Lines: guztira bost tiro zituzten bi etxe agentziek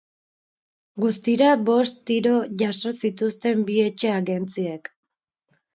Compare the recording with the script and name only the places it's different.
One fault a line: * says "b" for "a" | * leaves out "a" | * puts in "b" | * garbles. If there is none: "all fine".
* puts in "jaso"